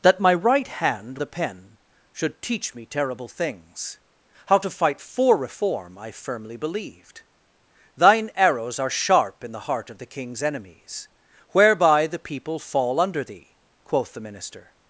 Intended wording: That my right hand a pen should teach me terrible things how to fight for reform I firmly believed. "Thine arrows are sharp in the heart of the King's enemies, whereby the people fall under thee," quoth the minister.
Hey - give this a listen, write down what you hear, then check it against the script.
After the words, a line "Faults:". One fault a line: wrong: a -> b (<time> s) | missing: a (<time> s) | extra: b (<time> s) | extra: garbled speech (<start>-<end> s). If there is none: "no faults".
That my right hand a pen should teach me terrible things how to fight for reform I firmly believed. "Thine arrows are sharp in the heart of the King's enemies, whereby the people fall under thee," quoth the minister.
Faults:
no faults